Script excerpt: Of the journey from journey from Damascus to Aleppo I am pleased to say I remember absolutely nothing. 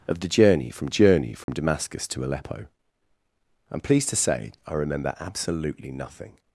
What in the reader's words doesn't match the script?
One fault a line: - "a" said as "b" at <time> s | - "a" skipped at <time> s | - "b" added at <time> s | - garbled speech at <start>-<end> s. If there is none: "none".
none